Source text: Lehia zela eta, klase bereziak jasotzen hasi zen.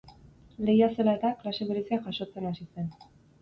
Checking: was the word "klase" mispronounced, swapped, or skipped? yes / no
no